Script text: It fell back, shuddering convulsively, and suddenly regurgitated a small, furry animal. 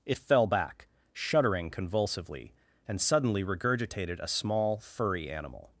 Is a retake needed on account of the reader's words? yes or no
no